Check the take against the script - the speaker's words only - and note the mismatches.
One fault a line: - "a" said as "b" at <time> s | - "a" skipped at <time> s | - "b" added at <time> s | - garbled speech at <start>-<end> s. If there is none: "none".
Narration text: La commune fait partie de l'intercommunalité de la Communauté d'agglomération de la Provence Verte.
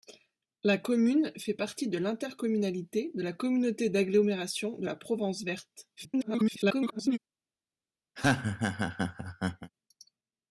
- garbled speech at 6.0-7.2 s